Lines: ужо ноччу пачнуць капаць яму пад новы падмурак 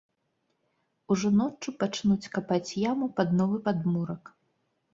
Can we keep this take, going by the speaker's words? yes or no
yes